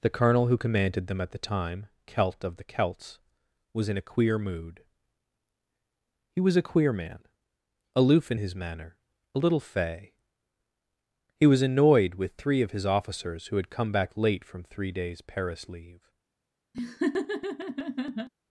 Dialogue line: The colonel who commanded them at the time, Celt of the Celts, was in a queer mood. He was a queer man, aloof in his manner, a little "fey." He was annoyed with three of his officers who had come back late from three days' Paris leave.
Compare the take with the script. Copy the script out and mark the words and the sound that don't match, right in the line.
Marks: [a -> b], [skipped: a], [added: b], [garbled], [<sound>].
The colonel who commanded them at the time, Celt of the Celts, was in a queer mood. He was a queer man, aloof in his manner, a little "fey." He was annoyed with three of his officers who had come back late from three days' Paris leave. [laugh]